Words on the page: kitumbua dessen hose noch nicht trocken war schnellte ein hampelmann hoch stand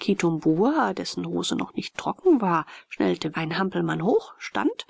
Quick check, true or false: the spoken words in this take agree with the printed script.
true